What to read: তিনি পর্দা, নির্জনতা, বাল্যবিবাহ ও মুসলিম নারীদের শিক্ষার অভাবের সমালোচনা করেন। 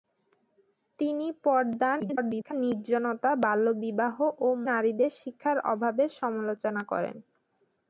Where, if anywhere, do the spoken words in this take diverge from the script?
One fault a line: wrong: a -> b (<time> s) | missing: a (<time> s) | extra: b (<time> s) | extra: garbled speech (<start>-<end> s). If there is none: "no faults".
extra: garbled speech (2.0-2.5 s)
missing: মুসলিম (4.5 s)